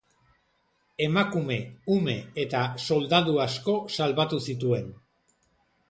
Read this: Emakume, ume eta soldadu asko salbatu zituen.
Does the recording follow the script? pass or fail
pass